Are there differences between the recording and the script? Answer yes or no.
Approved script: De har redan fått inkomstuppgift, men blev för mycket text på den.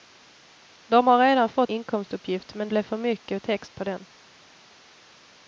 no